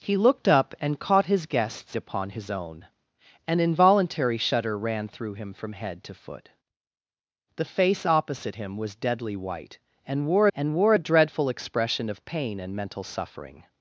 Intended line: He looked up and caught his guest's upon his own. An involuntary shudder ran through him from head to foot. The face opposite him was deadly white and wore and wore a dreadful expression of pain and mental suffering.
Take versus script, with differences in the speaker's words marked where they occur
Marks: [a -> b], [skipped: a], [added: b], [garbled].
He looked up and caught his guest's upon his own. An involuntary shudder ran through him from head to foot. The face opposite him was deadly white and wore and wore a dreadful expression of pain and mental suffering.